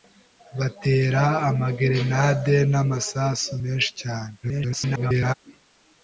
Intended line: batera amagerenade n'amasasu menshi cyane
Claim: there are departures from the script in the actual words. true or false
true